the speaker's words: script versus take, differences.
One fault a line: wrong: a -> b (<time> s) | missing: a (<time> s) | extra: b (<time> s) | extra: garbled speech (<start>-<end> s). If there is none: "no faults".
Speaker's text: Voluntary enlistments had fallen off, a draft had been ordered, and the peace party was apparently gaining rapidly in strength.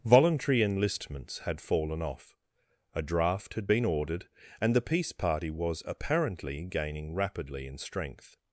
no faults